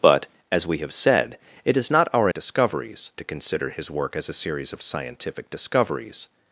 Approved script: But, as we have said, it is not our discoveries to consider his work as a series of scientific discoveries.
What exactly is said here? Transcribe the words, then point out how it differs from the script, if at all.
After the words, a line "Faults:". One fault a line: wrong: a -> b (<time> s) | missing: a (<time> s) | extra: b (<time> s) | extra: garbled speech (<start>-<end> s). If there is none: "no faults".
But, as we have said, it is not our discoveries to consider his work as a series of scientific discoveries.
Faults:
no faults